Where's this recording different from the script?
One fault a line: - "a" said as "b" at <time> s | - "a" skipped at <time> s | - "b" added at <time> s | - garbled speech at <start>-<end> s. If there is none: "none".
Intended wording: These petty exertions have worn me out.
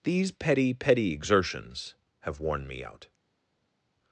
- "petty" added at 0.7 s